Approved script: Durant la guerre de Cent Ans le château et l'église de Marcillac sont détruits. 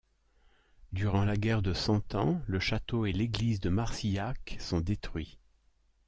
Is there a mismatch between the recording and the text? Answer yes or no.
no